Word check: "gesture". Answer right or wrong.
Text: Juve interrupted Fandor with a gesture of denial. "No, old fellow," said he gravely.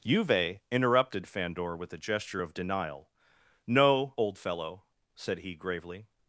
right